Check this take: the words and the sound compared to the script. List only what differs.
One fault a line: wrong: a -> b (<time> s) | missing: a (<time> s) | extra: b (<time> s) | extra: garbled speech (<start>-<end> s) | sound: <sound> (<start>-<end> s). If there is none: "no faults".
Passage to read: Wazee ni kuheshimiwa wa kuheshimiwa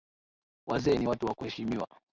wrong: kuheshimiwa -> watu (1.0 s)